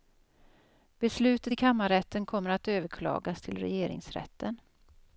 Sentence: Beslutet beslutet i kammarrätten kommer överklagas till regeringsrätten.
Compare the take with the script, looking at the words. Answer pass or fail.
fail